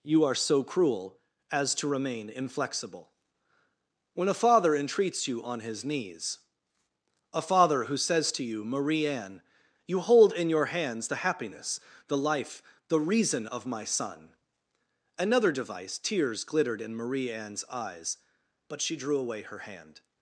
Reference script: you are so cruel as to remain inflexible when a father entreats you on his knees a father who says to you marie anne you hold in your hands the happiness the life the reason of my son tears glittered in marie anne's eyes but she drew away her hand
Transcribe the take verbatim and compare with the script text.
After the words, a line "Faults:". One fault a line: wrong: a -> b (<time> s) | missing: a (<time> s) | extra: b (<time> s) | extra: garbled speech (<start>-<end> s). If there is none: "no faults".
you are so cruel as to remain inflexible when a father entreats you on his knees a father who says to you marie anne you hold in your hands the happiness the life the reason of my son another device tears glittered in marie anne's eyes but she drew away her hand
Faults:
extra: another device (15.2 s)